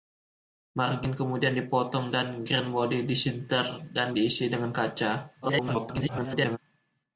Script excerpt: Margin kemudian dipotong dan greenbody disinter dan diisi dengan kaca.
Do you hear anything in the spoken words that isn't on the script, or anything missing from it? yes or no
yes